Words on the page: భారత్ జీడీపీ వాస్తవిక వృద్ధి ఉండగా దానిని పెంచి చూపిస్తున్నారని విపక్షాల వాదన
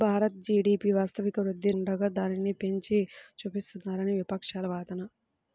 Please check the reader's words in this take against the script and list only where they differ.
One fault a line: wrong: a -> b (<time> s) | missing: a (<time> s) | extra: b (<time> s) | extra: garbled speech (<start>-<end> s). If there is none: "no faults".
no faults